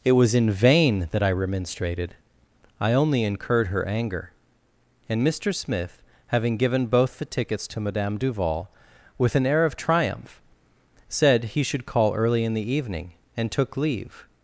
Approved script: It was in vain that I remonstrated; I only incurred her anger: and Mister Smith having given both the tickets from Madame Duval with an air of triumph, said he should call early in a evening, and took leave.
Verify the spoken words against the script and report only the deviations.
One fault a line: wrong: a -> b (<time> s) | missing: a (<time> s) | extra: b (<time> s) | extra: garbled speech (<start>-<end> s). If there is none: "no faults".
wrong: from -> to (7.7 s)
wrong: a -> the (12.5 s)